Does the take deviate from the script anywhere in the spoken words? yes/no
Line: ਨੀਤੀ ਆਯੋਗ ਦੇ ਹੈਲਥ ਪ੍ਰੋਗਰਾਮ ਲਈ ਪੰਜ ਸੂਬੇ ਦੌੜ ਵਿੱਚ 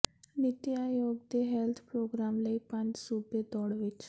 no